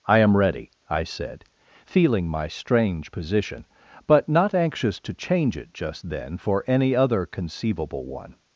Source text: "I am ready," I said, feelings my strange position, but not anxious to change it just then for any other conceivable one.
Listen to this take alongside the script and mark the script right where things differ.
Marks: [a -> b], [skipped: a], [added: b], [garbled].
"I am ready," I said, [feelings -> feeling] my strange position, but not anxious to change it just then for any other conceivable one.